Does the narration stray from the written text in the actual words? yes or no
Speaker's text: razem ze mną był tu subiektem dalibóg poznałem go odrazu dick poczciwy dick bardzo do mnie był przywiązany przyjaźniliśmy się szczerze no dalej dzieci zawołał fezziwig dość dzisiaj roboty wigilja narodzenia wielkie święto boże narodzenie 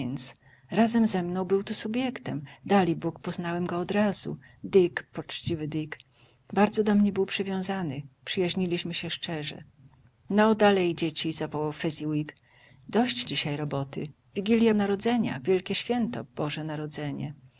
no